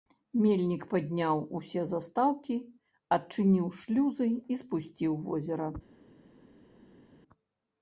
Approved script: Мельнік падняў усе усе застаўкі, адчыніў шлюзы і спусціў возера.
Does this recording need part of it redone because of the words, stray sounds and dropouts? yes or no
yes